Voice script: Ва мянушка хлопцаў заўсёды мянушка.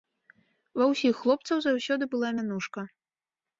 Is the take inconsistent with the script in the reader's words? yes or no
yes